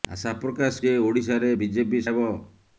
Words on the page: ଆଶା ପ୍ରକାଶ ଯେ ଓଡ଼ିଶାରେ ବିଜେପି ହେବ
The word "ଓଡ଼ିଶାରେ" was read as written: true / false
true